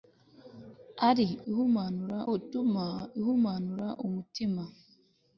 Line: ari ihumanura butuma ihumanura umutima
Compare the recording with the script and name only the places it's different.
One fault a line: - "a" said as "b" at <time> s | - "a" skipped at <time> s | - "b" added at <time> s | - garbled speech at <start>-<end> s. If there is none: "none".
none